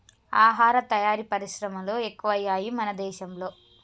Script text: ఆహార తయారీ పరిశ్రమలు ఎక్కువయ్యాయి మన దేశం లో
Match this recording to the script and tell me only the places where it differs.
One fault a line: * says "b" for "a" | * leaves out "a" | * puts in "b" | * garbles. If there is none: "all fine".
all fine